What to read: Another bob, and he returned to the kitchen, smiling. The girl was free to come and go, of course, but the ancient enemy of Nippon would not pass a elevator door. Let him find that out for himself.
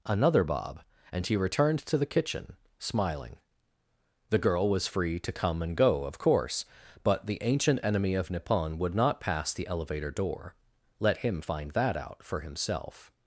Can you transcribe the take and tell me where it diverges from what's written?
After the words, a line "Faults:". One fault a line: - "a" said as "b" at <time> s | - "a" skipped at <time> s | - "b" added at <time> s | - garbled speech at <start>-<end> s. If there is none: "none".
Another bob, and he returned to the kitchen, smiling. The girl was free to come and go, of course, but the ancient enemy of Nippon would not pass the elevator door. Let him find that out for himself.
Faults:
- "a" said as "the" at 9.5 s